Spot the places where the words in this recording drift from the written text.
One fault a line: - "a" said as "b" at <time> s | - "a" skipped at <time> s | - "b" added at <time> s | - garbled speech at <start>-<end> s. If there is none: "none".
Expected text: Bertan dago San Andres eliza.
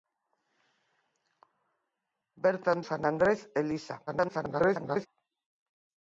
- "dago" skipped at 2.8 s
- garbled speech at 4.1-5.1 s